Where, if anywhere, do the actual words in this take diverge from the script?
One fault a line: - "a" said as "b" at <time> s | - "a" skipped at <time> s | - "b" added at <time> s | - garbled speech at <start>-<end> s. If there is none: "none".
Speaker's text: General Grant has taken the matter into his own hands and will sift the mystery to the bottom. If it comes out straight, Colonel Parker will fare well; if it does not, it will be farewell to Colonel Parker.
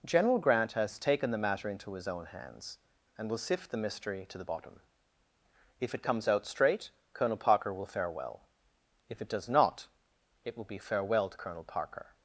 none